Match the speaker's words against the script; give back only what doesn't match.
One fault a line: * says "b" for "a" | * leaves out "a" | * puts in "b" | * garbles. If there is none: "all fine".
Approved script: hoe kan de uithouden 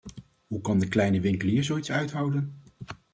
* puts in "kleine winkelier zoiets"